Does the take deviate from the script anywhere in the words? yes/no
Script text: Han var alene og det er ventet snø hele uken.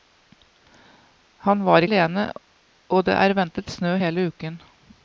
no